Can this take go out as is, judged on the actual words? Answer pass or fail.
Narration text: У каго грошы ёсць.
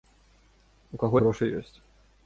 pass